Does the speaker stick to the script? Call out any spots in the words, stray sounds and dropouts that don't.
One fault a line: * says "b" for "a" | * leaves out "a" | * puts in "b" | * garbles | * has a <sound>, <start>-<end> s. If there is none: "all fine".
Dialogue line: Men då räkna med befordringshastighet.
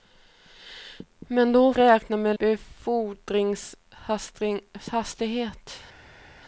all fine